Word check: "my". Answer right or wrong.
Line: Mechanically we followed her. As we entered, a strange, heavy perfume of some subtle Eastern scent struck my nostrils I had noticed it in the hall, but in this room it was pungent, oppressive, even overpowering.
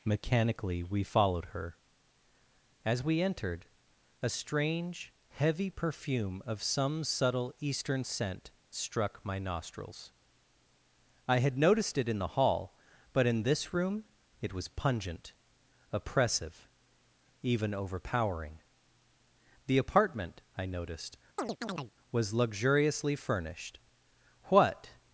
right